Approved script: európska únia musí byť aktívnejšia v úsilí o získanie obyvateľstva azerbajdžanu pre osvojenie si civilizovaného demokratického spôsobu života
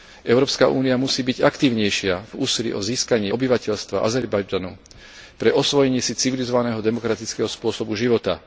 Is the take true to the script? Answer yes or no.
yes